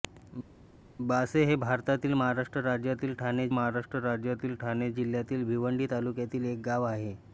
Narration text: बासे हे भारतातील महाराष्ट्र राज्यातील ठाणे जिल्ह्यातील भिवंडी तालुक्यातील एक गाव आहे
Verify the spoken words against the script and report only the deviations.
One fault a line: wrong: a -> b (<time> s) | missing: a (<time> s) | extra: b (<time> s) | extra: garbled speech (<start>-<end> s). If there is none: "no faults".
extra: महाराष्ट्र राज्यातील ठाणे (3.5 s)